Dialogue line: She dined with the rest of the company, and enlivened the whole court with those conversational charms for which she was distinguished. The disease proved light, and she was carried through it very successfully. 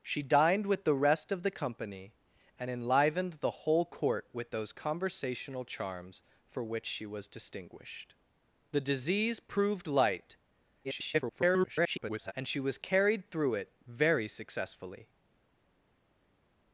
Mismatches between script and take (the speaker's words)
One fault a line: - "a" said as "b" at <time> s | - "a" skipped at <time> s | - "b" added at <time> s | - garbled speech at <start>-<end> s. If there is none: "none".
- garbled speech at 10.8-12.3 s